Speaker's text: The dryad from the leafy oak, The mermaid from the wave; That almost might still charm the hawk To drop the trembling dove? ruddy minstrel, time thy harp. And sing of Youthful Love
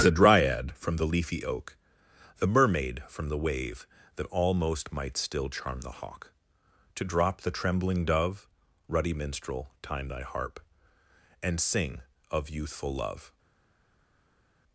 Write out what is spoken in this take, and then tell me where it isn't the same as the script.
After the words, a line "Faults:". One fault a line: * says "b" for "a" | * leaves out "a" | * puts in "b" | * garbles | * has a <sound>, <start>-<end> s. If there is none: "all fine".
The dryad from the leafy oak, The mermaid from the wave; That almost might still charm the hawk To drop the trembling dove? ruddy minstrel, time thy harp. And sing of Youthful Love
Faults:
all fine